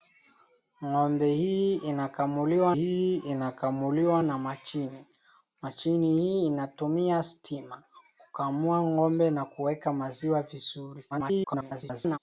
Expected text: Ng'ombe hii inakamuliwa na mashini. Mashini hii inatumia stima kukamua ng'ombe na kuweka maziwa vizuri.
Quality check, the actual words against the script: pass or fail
fail